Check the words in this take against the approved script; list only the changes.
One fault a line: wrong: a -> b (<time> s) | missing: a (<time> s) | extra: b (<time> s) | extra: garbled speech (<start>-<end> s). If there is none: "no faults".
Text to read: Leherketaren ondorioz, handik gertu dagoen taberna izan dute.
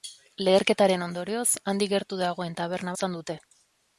no faults